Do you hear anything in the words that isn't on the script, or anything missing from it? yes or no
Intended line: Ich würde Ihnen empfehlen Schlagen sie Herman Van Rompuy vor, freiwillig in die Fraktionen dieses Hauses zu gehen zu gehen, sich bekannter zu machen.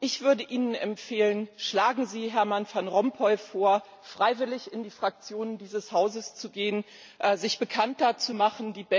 yes